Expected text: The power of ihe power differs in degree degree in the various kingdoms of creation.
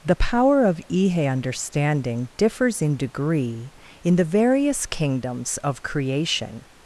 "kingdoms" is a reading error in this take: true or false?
false